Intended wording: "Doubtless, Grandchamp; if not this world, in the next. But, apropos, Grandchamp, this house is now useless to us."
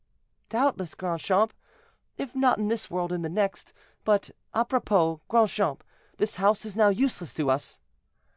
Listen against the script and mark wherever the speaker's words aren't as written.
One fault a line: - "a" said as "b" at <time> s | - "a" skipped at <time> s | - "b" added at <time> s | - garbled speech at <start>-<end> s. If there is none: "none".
- "in" added at 2.6 s